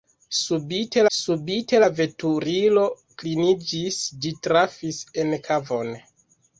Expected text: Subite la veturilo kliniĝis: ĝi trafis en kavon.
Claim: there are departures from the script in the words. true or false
true